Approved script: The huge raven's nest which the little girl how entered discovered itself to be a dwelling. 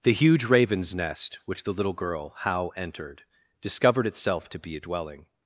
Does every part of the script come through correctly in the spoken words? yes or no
yes